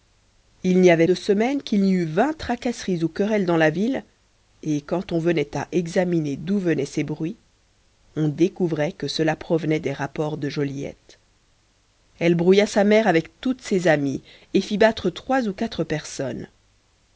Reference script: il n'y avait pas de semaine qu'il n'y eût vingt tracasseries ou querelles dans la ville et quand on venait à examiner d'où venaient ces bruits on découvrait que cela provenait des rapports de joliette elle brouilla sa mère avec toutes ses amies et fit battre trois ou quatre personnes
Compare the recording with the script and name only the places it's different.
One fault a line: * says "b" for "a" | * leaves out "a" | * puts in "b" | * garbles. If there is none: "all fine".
* leaves out "pas"